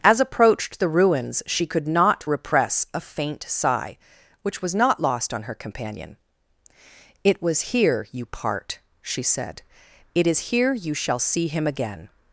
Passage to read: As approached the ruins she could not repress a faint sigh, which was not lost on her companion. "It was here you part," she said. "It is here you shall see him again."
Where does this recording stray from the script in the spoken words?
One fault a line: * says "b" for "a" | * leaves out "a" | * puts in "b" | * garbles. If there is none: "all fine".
all fine